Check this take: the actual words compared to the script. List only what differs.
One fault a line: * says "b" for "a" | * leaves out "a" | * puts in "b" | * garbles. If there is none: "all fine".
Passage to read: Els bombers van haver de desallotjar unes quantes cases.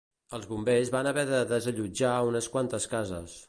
all fine